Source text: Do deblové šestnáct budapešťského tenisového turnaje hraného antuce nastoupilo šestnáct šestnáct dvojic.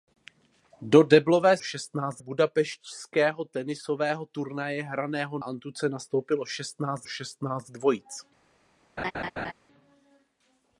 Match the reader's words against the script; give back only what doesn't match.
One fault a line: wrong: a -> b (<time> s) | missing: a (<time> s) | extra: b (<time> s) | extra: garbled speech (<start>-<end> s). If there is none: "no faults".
no faults